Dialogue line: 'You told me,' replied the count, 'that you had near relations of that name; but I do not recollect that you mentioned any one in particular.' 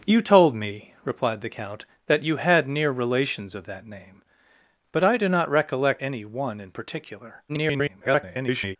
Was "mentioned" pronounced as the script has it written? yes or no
no